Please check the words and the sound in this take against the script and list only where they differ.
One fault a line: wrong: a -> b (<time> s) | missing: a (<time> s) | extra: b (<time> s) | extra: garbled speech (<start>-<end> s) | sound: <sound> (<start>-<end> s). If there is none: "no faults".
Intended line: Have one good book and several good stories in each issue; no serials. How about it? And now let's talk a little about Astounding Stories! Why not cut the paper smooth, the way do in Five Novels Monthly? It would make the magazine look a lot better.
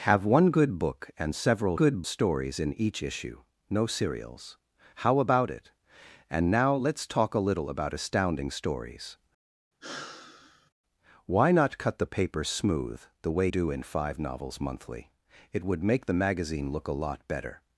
sound: sigh (9.8-10.7 s)